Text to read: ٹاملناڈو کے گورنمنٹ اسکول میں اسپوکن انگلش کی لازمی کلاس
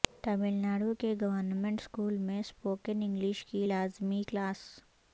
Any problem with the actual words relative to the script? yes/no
no